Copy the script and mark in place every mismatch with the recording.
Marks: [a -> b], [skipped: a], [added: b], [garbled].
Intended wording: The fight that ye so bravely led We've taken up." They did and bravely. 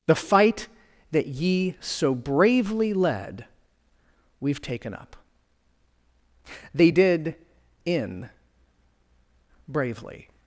The fight that ye so bravely led We've taken up." They did [and -> in] bravely.